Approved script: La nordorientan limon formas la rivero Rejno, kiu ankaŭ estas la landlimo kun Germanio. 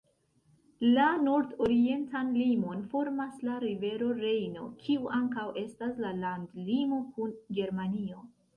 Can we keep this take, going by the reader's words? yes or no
yes